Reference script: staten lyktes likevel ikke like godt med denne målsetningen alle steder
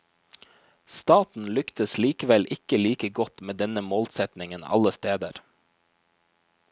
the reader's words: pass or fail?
pass